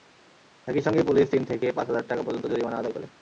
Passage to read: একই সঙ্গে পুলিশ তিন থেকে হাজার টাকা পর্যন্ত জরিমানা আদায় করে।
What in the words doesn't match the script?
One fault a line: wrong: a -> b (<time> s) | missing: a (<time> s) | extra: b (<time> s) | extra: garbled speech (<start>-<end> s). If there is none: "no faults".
extra: পাঁচ (1.8 s)